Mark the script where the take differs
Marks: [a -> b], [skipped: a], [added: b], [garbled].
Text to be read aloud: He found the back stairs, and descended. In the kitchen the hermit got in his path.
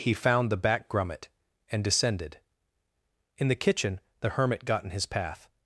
He found the back [stairs, -> grummet] and descended. In the kitchen the hermit got in his path.